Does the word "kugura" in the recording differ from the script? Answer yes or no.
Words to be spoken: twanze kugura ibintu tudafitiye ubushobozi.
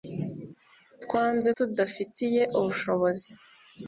yes